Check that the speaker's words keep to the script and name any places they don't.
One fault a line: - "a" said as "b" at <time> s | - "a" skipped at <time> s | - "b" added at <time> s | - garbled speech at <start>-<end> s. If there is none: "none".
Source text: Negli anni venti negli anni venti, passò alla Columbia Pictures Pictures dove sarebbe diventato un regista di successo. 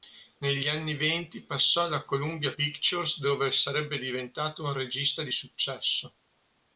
- "negli anni venti" skipped at 1.4 s
- "Pictures" skipped at 3.2 s